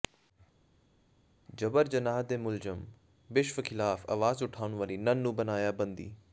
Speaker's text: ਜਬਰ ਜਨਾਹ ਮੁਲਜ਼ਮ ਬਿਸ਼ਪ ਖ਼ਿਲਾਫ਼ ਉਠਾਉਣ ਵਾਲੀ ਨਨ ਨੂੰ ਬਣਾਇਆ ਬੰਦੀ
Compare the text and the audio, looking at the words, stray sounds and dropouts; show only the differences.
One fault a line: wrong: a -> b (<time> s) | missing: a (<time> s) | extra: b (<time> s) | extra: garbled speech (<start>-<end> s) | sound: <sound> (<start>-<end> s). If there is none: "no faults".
extra: ਦੇ (2.2 s)
extra: ਆਵਾਜ਼ (4.1 s)